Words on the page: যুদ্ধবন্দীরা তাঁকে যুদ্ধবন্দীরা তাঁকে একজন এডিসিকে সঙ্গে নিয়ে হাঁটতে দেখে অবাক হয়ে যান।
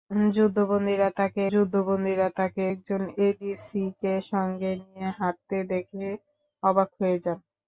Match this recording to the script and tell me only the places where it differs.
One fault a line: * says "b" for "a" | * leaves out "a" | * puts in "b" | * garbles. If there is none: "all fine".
all fine